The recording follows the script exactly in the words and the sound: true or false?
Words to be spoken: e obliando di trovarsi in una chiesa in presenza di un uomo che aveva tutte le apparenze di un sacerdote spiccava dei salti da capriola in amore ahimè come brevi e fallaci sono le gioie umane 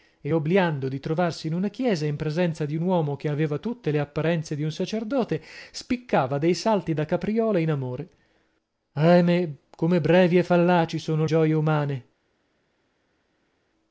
false